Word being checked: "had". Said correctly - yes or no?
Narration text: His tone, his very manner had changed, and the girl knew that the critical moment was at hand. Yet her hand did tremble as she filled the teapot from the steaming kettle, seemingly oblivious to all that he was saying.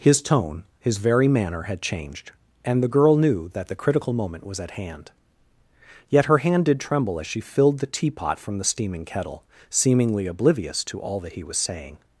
yes